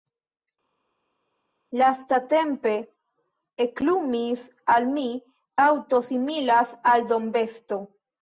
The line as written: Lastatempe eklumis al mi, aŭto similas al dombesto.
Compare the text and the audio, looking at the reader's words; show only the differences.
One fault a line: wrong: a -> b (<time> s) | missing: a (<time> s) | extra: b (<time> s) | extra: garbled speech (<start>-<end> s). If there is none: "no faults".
no faults